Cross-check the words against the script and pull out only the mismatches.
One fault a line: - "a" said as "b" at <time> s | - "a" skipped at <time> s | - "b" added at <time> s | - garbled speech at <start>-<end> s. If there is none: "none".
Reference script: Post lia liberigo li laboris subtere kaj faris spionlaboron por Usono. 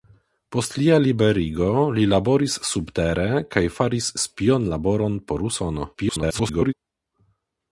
- garbled speech at 5.9-6.7 s